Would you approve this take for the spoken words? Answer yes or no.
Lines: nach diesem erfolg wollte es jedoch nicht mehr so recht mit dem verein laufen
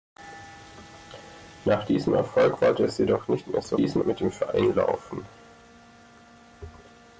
no